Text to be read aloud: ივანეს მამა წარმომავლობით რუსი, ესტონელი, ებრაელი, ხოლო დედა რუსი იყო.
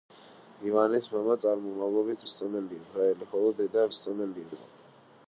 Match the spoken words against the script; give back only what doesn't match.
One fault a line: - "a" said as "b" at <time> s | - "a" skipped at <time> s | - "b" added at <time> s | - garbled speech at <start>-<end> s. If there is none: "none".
- "რუსი" skipped at 2.2 s
- "რუსი" said as "ესტონელი" at 3.9 s